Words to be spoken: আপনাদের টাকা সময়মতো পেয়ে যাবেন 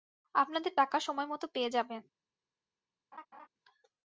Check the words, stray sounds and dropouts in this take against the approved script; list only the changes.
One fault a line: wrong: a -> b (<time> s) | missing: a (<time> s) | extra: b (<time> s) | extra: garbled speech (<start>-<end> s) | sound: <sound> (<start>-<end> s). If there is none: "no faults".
sound: laugh (3.1-3.5 s)